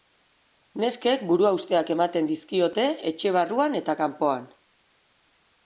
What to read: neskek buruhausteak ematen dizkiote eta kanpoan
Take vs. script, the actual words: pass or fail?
fail